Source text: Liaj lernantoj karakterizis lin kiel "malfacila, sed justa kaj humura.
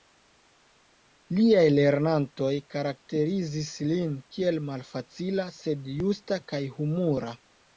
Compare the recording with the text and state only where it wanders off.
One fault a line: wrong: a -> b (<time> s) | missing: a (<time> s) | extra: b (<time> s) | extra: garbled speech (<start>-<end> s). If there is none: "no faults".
no faults